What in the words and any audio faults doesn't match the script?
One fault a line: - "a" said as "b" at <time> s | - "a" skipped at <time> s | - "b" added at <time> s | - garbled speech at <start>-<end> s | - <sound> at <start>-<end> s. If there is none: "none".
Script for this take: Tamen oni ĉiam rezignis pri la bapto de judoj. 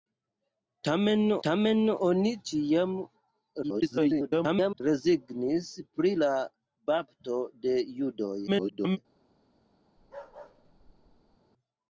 - "tamen" added at 1.5 s
- garbled speech at 3.6-4.8 s
- garbled speech at 8.5-9.0 s
- bark at 10.0-11.4 s